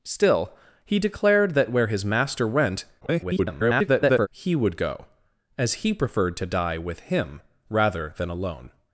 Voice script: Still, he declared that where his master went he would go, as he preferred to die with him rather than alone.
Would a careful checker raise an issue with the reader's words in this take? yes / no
yes